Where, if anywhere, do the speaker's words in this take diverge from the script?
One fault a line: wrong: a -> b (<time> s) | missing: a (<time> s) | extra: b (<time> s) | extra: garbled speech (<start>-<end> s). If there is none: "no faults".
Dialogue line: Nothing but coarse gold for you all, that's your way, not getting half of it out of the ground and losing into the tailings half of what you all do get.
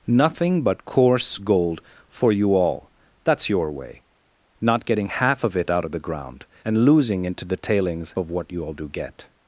missing: half (8.2 s)